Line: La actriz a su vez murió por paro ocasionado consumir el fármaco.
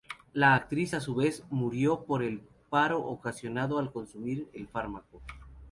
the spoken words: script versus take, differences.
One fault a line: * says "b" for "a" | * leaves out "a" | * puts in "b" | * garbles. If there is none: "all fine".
* puts in "el"
* puts in "al"